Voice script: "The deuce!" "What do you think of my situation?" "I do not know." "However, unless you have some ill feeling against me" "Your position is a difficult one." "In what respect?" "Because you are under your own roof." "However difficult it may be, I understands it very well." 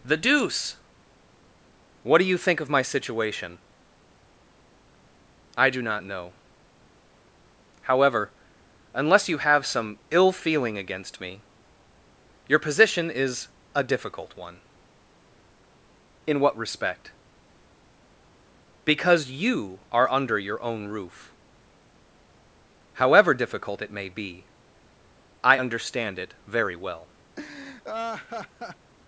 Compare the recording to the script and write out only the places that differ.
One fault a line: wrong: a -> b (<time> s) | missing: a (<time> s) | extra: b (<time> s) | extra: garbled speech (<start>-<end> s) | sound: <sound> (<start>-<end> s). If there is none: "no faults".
wrong: understands -> understand (25.6 s)
sound: laugh (27.4-28.9 s)